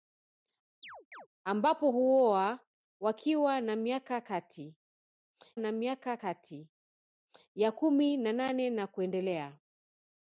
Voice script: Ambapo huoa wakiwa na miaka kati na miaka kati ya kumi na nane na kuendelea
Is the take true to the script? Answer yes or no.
yes